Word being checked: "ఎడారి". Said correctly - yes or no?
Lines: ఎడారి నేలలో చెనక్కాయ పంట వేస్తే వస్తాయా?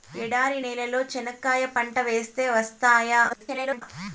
yes